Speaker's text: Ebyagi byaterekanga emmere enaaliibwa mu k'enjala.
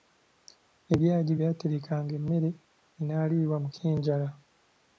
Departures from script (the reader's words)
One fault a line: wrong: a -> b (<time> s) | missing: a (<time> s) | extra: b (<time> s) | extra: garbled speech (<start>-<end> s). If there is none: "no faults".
no faults